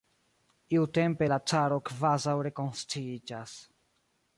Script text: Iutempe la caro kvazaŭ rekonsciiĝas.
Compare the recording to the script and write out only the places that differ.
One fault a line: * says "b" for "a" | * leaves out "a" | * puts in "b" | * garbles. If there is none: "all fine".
all fine